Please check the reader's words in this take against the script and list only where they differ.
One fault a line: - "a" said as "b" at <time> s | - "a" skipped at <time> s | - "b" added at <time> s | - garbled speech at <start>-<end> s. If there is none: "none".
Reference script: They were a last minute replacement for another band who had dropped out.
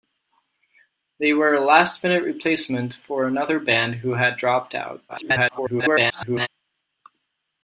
- garbled speech at 5.1-6.5 s